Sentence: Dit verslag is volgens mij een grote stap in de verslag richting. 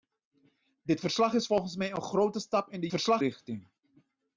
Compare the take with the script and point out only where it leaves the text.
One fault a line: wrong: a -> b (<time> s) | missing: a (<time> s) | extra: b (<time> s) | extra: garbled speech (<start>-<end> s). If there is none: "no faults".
no faults